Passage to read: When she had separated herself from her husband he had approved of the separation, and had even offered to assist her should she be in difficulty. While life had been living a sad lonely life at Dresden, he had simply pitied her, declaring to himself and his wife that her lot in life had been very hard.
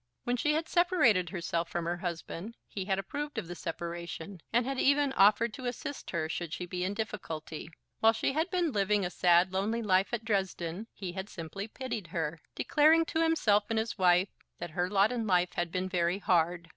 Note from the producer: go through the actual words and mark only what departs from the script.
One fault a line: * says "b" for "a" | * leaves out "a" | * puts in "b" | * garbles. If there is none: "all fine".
* says "she" for "life"